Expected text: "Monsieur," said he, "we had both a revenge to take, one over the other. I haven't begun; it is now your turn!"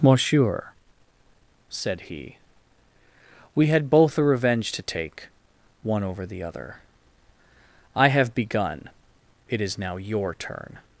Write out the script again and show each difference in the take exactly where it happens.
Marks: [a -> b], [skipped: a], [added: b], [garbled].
"Monsieur," said he, "we had both a revenge to take, one over the other. I [haven't -> have] begun; it is now your turn!"